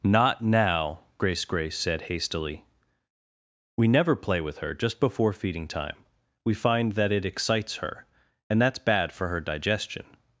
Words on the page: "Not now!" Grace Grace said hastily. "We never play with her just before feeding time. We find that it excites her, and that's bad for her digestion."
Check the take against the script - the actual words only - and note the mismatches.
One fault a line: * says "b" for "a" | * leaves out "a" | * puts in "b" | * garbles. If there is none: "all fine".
all fine